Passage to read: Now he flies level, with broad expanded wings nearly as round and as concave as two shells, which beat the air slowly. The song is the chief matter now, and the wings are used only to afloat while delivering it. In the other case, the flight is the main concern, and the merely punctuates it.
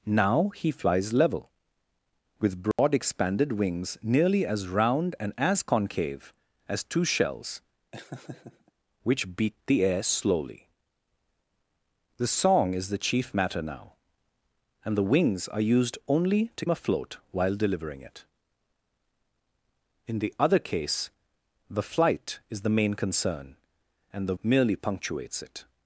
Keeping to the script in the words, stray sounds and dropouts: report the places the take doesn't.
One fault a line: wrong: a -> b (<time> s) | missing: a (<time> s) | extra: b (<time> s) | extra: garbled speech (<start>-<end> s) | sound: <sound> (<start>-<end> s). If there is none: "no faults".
sound: dropout (2.7-2.8 s)
sound: laugh (7.9-8.7 s)